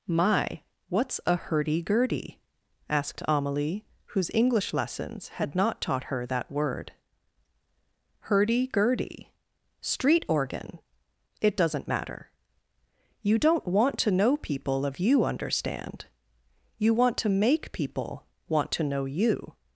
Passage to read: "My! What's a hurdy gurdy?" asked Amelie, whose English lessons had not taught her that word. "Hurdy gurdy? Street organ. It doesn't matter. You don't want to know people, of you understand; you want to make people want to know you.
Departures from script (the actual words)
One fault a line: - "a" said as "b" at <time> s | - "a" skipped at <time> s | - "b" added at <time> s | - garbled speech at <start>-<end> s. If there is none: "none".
none